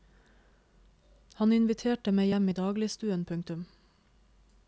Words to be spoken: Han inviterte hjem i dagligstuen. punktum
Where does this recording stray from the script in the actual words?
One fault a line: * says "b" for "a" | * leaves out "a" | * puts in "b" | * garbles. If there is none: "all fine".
* puts in "meg"